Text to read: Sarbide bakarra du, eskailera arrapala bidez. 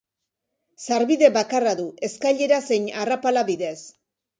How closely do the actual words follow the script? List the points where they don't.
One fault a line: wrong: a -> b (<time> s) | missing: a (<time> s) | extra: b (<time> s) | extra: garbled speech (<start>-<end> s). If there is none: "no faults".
extra: zein (2.7 s)